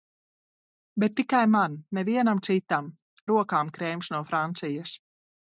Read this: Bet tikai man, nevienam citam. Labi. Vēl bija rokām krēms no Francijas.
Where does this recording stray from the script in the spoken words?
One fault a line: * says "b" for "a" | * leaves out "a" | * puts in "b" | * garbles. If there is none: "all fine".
* leaves out "Labi Vēl bija"